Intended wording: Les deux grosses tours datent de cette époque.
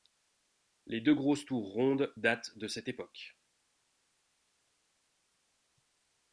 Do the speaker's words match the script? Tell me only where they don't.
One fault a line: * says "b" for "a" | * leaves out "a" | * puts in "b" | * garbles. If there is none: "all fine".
* puts in "rondes"